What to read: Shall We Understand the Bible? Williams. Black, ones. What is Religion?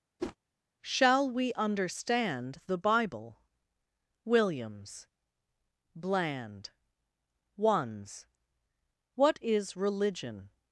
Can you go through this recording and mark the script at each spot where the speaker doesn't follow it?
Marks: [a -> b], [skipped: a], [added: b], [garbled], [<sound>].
[whoosh] Shall We Understand the Bible? Williams. [Black, -> Bland] ones. What is Religion?